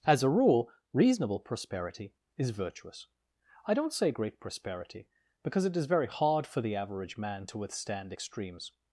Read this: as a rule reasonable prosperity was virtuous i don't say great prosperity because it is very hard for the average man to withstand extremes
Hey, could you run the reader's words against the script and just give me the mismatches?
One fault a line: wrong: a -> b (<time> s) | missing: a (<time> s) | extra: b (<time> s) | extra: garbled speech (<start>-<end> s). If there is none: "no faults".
wrong: was -> is (2.4 s)